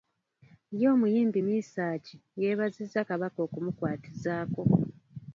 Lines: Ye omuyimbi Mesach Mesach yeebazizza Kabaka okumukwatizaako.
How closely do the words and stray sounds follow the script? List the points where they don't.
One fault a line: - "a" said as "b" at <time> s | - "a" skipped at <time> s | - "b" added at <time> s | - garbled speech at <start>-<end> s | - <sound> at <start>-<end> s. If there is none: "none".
- "Mesach" skipped at 2.1 s